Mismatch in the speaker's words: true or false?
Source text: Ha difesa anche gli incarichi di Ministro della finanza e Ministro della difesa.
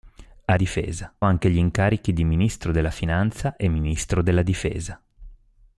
false